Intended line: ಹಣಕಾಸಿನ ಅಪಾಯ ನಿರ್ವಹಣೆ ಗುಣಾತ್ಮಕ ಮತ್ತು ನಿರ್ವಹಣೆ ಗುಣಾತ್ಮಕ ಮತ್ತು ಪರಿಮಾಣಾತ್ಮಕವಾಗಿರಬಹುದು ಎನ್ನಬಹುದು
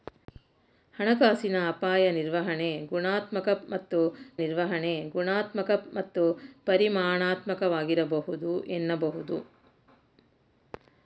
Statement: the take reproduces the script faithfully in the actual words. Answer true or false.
true